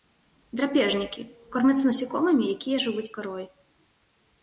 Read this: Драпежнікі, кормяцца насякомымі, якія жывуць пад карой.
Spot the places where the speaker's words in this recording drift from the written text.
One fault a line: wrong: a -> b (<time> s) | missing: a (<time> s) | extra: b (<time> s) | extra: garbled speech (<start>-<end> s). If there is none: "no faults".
missing: пад (3.0 s)